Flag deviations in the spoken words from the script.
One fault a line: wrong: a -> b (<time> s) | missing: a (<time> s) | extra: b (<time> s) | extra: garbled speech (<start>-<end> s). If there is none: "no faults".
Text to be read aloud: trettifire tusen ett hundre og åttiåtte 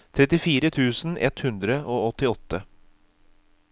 no faults